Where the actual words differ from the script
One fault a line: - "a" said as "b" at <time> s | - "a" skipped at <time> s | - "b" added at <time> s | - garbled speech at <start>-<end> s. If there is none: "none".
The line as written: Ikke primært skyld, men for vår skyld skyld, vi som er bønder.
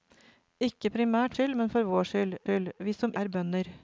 none